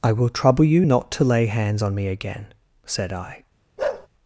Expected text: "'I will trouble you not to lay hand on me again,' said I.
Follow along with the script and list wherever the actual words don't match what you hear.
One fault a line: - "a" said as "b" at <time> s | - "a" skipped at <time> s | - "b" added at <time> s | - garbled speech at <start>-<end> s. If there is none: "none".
- "hand" said as "hands" at 1.5 s